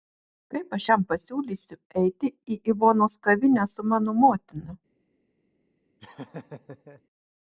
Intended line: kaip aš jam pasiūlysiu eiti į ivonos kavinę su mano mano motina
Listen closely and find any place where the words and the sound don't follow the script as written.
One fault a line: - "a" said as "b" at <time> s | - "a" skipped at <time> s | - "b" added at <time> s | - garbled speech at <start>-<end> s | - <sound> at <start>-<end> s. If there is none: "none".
- "mano" skipped at 4.1 s
- laugh at 6.0-7.0 s